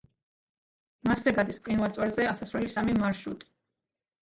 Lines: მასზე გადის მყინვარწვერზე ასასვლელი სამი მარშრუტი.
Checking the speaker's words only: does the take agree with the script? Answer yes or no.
yes